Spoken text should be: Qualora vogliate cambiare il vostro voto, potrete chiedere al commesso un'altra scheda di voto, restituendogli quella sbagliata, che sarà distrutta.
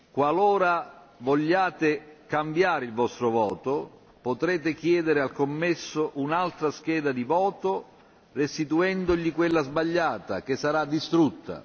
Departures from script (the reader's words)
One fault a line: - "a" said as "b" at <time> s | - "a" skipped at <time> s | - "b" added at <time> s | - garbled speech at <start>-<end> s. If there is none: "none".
none